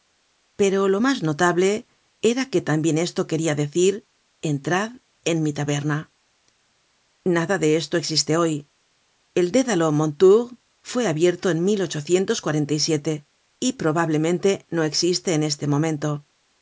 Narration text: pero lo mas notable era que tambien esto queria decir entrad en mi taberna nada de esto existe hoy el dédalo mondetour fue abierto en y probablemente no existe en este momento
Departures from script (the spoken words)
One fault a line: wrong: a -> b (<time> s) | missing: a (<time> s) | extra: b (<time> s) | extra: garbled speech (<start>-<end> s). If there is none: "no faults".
no faults